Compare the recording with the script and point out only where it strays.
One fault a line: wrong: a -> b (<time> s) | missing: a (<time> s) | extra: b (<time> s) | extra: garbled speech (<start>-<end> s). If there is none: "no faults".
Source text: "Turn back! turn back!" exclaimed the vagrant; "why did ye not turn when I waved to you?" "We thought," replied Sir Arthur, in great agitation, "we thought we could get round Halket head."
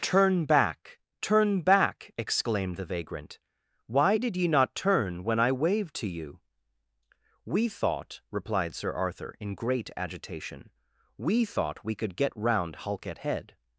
no faults